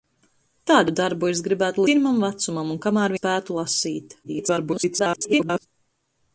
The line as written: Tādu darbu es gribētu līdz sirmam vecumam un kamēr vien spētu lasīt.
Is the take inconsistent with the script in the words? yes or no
yes